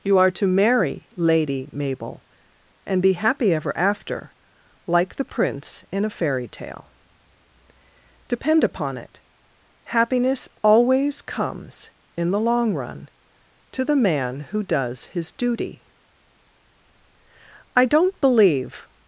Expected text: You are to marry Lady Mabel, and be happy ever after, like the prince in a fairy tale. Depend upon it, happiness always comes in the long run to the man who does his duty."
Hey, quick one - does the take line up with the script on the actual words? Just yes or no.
no